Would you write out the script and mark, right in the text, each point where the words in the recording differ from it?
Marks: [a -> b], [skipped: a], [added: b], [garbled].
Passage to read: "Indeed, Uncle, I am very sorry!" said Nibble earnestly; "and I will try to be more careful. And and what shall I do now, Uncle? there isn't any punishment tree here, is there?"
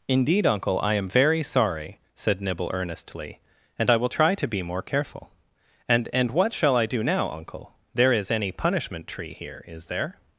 "Indeed, Uncle, I am very sorry!" said Nibble earnestly; "and I will try to be more careful. And and what shall I do now, Uncle? there [isn't -> is] any punishment tree here, is there?"